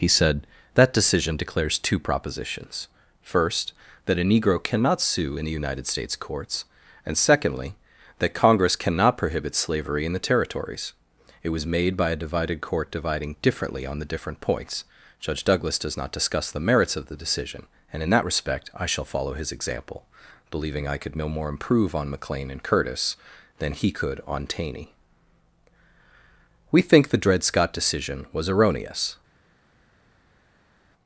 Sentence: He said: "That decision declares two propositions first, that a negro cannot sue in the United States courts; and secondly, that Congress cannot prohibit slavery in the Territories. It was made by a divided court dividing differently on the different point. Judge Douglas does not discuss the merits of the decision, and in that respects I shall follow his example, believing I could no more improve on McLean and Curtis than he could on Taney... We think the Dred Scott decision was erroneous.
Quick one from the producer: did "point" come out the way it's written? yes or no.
no